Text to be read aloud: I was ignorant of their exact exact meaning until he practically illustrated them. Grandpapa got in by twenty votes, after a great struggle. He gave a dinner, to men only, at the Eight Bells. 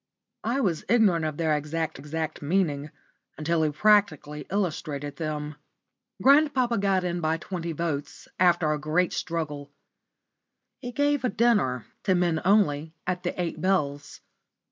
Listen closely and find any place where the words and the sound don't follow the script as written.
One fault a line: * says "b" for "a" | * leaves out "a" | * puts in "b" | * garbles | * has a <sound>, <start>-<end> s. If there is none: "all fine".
all fine